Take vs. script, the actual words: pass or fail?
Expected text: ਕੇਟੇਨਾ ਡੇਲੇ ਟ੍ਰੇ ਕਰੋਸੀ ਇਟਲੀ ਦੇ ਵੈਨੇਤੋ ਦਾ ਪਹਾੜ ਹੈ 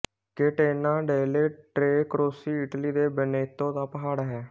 pass